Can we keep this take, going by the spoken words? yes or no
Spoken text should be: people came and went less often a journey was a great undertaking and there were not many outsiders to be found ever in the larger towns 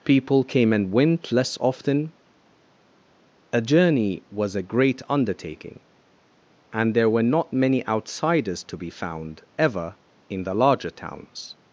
yes